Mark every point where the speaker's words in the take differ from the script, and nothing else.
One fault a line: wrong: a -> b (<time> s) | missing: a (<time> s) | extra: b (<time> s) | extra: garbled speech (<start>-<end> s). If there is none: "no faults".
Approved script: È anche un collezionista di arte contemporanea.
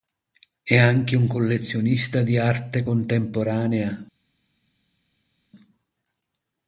no faults